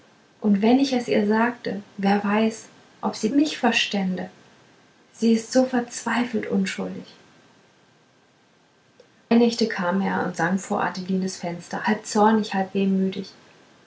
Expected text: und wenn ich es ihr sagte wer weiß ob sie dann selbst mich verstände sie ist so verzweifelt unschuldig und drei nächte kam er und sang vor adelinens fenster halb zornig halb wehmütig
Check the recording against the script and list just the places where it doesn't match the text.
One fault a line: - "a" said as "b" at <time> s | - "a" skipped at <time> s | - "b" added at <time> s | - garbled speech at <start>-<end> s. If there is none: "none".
- "dann selbst" skipped at 3.3 s
- "und drei" skipped at 7.1 s